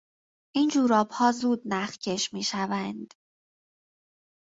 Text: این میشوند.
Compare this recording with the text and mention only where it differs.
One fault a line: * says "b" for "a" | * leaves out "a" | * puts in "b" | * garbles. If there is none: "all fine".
* puts in "جورابها زود نخکش"